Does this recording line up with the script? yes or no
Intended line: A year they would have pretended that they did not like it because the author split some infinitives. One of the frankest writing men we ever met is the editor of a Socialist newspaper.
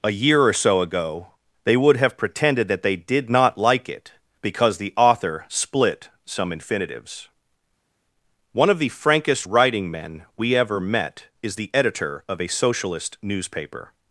no